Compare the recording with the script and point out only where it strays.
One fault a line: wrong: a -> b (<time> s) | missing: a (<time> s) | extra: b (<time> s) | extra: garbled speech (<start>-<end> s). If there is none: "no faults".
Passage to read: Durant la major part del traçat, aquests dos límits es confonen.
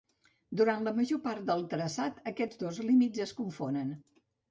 no faults